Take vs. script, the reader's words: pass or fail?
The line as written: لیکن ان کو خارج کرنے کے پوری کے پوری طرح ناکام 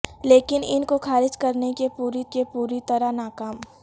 pass